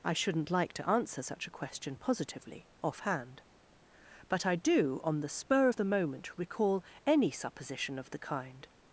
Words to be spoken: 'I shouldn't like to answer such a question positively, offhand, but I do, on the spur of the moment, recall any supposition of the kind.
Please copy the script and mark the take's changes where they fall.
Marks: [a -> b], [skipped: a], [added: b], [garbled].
'I shouldn't like to answer such a question positively, offhand, but I do, on the spur of the moment, recall any supposition of the kind.